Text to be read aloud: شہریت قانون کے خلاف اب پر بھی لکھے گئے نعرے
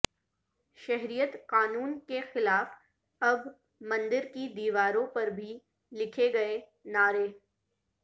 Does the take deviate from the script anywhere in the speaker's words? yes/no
yes